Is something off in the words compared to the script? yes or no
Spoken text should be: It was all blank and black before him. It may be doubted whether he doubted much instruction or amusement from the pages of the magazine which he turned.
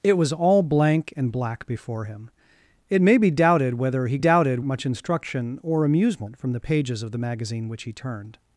no